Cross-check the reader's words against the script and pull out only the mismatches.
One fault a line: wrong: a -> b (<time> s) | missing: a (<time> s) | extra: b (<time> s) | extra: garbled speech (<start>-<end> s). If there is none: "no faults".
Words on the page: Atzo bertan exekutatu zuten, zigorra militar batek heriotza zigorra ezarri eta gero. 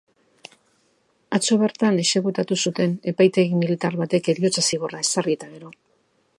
wrong: zigorra -> epaitegi (3.1 s)